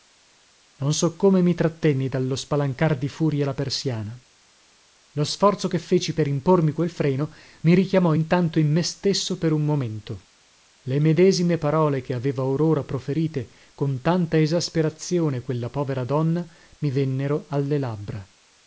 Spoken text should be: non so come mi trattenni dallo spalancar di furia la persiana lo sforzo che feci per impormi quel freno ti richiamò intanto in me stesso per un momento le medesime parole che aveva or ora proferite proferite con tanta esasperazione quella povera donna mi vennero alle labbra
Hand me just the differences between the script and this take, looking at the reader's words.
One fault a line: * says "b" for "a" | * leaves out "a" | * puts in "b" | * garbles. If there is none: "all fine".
* says "mi" for "ti"
* leaves out "proferite"